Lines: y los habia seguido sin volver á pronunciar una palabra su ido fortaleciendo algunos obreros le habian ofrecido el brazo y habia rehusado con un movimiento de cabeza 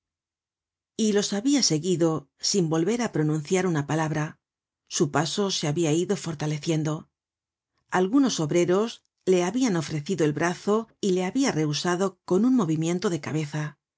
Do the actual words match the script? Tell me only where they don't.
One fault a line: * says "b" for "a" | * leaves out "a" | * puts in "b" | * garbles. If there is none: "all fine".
* puts in "paso se habia"
* puts in "le"